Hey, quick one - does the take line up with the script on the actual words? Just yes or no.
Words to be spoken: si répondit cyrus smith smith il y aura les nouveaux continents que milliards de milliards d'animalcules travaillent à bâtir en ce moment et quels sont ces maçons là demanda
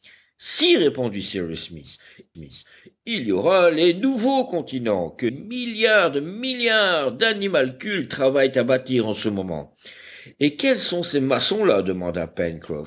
yes